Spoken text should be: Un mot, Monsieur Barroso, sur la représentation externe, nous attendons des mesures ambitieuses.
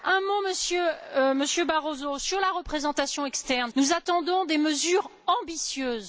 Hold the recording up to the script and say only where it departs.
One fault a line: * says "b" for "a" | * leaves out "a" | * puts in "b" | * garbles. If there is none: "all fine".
all fine